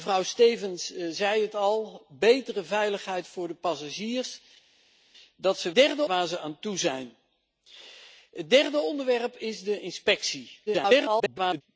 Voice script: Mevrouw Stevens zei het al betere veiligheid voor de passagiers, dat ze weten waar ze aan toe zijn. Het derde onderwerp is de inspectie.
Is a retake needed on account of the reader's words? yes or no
yes